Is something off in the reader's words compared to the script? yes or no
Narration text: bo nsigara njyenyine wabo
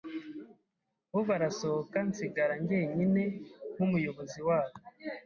yes